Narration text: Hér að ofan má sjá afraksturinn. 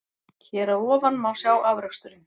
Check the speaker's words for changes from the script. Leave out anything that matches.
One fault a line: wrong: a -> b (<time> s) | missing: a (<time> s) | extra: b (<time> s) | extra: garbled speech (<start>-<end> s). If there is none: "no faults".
no faults